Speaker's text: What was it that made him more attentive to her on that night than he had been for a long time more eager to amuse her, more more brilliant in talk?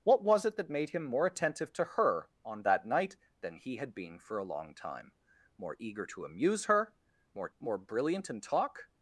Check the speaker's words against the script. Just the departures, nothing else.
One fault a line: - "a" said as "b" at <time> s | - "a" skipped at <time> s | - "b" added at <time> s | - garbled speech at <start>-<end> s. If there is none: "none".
none